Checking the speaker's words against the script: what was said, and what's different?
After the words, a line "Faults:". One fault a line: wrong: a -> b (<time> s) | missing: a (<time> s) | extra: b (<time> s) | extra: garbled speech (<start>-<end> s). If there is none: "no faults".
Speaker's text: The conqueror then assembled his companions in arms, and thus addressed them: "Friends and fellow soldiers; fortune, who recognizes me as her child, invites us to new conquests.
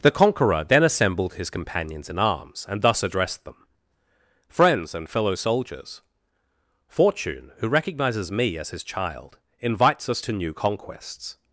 The conqueror then assembled his companions in arms, and thus addressed them: "Friends and fellow soldiers; fortune, who recognizes me as his child, invites us to new conquests.
Faults:
wrong: her -> his (8.7 s)